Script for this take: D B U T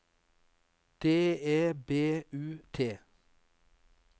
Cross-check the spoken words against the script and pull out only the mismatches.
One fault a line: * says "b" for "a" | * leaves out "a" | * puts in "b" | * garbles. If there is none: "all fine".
* puts in "E"